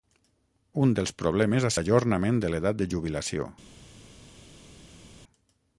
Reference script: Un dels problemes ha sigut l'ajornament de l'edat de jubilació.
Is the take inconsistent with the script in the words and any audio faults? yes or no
yes